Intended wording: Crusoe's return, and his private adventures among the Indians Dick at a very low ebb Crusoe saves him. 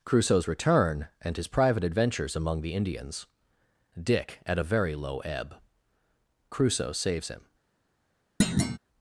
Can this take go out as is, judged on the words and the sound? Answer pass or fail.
fail